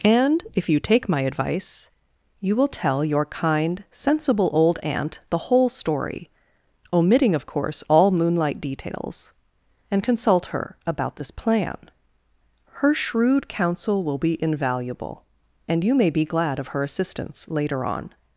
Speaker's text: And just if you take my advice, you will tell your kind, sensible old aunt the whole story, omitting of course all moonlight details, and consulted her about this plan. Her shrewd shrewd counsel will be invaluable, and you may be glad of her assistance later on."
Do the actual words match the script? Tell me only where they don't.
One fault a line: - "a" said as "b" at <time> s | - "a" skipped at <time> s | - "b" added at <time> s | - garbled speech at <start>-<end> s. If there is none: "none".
- "just" skipped at 0.4 s
- "consulted" said as "consult" at 10.0 s
- "shrewd" skipped at 13.5 s